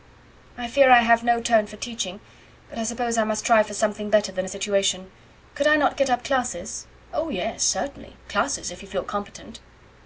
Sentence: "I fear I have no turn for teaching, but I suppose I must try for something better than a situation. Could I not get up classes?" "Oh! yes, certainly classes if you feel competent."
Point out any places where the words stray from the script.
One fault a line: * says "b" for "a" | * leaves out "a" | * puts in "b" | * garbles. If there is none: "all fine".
all fine